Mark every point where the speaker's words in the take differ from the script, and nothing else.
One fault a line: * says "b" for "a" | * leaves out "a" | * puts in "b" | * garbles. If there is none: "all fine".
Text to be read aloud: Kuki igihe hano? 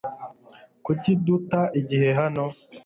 * puts in "duta"